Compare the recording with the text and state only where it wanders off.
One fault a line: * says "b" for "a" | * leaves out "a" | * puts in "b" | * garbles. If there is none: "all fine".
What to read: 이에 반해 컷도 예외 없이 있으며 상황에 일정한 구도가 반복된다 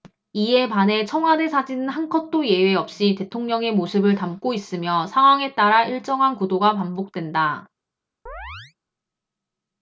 * puts in "청와대 사진은 한"
* puts in "대통령의 모습을 담고"
* puts in "따라"